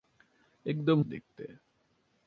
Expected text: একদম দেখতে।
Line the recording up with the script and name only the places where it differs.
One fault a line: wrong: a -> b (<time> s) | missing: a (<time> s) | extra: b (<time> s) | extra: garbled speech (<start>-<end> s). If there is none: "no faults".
no faults